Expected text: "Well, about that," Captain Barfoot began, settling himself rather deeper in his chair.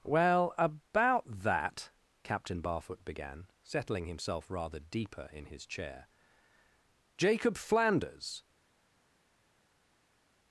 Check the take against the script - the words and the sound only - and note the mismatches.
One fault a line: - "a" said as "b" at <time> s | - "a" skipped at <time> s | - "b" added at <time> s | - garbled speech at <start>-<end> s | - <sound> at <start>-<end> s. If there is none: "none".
- "Jacob Flanders" added at 7.2 s